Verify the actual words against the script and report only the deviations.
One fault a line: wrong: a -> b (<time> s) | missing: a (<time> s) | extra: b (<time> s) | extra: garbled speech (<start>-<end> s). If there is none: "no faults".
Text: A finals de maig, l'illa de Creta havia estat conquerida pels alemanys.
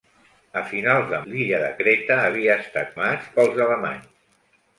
missing: maig (1.2 s)
wrong: conquerida -> maig (3.0 s)